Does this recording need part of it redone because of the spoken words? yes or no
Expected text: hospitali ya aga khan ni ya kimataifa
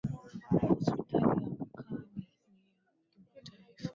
no